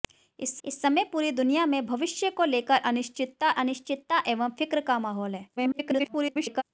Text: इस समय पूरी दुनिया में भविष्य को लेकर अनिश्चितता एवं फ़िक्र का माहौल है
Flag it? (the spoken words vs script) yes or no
yes